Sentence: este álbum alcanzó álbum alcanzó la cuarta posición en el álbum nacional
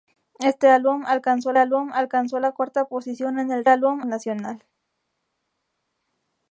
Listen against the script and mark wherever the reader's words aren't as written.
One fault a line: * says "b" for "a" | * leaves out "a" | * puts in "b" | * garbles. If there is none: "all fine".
all fine